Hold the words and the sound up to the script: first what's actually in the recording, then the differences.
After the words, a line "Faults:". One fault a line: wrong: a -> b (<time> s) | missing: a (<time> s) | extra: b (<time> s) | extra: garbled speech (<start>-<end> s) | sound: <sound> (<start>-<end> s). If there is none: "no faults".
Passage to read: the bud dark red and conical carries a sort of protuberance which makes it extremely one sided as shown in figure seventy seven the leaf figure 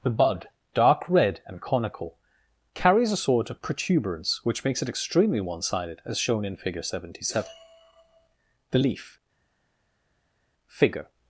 the bud dark red and conical carries a sort of protuberance which makes it extremely one sided as shown in figure seventy seven the leaf figure
Faults:
no faults